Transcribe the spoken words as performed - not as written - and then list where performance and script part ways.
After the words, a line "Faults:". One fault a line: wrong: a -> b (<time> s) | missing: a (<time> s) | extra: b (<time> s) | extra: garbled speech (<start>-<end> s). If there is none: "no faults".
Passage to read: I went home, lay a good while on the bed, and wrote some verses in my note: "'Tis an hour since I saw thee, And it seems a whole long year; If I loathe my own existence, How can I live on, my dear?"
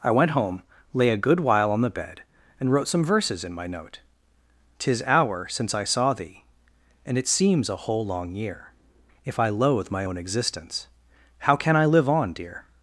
I went home, lay a good while on the bed, and wrote some verses in my note: "'Tis hour since I saw thee, And it seems a whole long year; If I loathe my own existence, How can I live on, dear?"
Faults:
missing: an (5.0 s)
missing: my (12.3 s)